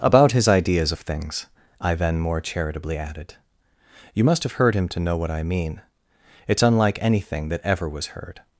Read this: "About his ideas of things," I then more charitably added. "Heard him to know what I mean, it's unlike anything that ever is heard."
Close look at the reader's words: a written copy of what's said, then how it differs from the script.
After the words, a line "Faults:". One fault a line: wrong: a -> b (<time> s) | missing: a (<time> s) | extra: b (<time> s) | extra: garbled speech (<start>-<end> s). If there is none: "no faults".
"About his ideas of things," I then more charitably added. "You must have heard him to know what I mean, it's unlike anything that ever was heard."
Faults:
extra: You must have (4.1 s)
wrong: is -> was (7.9 s)